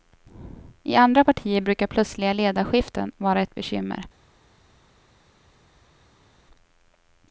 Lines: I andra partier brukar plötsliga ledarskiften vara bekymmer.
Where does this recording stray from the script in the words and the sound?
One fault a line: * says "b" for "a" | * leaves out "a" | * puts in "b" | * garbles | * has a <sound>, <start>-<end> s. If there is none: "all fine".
* puts in "ett"